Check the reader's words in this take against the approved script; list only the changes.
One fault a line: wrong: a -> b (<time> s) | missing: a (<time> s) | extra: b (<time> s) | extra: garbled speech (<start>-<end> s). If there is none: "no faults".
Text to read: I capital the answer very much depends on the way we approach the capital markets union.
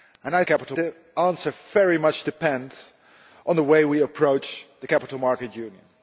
no faults